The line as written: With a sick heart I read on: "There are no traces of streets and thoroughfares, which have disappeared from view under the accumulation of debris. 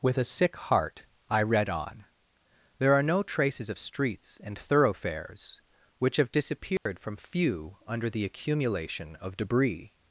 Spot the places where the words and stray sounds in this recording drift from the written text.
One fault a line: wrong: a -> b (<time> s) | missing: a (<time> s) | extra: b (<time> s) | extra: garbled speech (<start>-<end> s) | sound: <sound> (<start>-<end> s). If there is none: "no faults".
sound: dropout (6.8-6.9 s)
wrong: view -> few (7.2 s)